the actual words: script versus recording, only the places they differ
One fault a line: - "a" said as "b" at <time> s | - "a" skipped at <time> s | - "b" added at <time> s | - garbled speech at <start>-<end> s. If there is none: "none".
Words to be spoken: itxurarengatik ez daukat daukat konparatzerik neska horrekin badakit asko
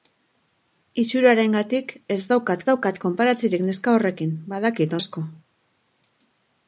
none